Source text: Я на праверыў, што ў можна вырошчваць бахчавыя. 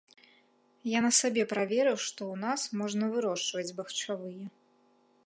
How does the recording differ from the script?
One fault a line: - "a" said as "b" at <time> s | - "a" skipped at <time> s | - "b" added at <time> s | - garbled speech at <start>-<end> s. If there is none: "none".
- "сабе" added at 1.2 s
- "нас" added at 2.5 s